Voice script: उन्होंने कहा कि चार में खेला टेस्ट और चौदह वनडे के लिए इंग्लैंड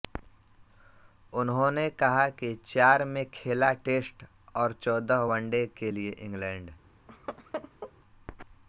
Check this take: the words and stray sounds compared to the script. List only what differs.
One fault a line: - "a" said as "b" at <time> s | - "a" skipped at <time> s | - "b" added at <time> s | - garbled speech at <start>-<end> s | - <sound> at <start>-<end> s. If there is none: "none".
- laugh at 7.1-7.9 s